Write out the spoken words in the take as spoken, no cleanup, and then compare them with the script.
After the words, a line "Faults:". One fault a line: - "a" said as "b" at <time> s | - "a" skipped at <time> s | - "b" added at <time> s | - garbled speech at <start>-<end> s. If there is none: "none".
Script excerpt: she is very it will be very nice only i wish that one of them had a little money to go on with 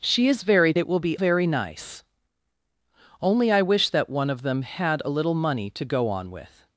she is very it will be very nice only i wish that one of them had a little money to go on with
Faults:
none